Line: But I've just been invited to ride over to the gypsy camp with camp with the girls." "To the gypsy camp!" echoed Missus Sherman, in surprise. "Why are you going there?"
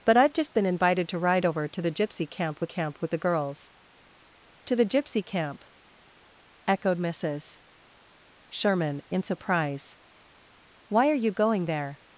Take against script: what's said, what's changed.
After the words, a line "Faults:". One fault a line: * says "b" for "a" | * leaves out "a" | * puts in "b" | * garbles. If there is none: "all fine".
But I've just been invited to ride over to the gypsy camp with camp with the girls." "To the gypsy camp!" echoed Missus Sherman, in surprise. "Why are you going there?"
Faults:
all fine